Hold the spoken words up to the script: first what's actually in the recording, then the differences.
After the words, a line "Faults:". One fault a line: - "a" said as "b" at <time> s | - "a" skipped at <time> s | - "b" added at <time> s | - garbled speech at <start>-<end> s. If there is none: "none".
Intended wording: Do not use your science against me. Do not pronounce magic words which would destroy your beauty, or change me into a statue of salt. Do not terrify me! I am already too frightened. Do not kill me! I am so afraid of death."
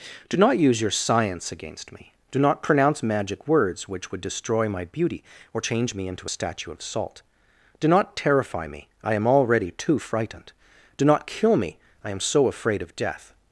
Do not use your science against me. Do not pronounce magic words which would destroy my beauty, or change me into a statue of salt. Do not terrify me! I am already too frightened. Do not kill me! I am so afraid of death."
Faults:
- "your" said as "my" at 4.7 s